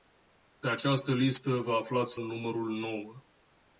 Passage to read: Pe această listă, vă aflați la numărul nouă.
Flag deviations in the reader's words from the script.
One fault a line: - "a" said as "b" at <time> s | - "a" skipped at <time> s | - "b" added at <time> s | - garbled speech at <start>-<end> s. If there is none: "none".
- "la" skipped at 2.2 s